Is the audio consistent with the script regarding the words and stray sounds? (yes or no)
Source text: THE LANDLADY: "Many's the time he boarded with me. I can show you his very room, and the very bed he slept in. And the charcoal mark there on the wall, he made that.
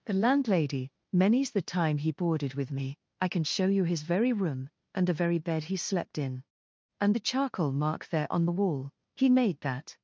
yes